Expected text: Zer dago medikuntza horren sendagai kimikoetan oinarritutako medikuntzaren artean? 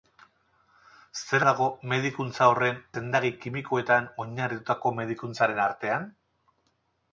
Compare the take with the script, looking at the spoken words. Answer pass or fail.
pass